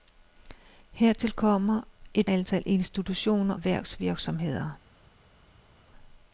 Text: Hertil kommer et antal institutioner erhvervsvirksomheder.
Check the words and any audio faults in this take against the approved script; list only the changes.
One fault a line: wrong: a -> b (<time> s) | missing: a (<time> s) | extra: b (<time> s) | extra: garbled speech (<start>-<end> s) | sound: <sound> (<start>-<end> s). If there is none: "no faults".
no faults